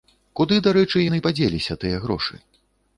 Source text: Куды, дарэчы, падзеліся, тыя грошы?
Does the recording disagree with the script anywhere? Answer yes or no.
yes